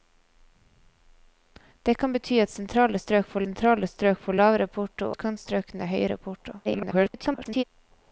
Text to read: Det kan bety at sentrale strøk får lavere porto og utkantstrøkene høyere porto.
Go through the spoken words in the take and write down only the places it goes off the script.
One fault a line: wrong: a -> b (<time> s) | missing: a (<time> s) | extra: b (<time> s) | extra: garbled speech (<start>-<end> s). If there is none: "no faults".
extra: sentrale strøk får (3.4 s)
missing: og (5.1 s)
extra: garbled speech (6.6-7.6 s)